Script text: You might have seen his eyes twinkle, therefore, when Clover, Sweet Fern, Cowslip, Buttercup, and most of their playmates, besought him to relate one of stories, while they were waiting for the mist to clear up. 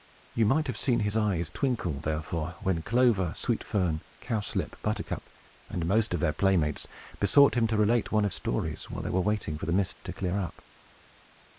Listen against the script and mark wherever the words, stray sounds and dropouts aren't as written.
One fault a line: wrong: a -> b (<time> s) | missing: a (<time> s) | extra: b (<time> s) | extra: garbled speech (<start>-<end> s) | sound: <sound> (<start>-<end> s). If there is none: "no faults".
no faults